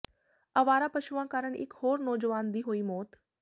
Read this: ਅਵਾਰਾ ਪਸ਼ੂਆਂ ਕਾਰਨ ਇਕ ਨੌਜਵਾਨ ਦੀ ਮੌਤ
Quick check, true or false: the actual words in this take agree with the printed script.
false